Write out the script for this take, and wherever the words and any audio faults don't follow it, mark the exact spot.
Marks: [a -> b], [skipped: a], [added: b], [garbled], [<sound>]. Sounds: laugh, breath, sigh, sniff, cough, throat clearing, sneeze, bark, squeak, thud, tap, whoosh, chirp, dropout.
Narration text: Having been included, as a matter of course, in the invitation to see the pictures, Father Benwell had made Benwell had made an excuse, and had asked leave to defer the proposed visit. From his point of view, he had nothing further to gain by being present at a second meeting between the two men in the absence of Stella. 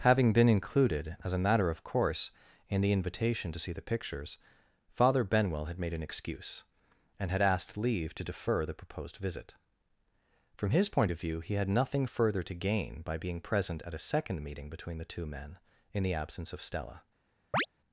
Having been included, as a matter of course, in the invitation to see the pictures, Father Benwell had made [skipped: Benwell had made] an excuse, and had asked leave to defer the proposed visit. From his point of view, he had nothing further to gain by being present at a second meeting between the two men in the absence of Stella. [chirp]